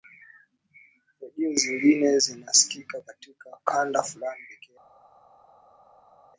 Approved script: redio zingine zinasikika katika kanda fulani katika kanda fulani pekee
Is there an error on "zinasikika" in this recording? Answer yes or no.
no